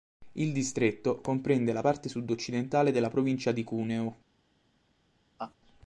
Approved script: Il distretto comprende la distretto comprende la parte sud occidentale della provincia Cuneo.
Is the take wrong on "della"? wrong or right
right